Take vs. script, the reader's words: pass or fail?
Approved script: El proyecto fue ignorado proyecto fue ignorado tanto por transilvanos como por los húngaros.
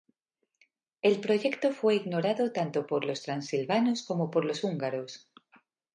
fail